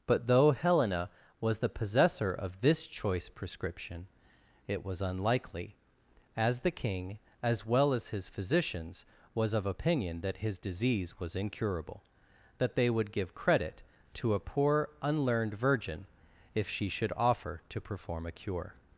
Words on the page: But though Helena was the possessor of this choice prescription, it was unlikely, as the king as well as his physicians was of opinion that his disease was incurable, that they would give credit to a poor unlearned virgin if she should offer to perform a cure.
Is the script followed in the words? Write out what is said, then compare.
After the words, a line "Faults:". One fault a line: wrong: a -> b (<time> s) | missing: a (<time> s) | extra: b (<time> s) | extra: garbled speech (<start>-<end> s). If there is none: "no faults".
But though Helena was the possessor of this choice prescription, it was unlikely, as the king as well as his physicians was of opinion that his disease was incurable, that they would give credit to a poor unlearned virgin if she should offer to perform a cure.
Faults:
no faults